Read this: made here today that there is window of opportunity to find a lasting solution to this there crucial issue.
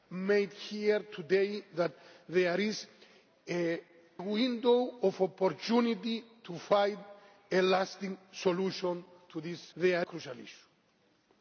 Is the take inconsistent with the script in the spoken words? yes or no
no